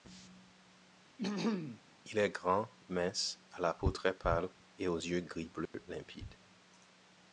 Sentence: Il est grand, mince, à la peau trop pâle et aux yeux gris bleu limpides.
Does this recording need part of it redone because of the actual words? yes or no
yes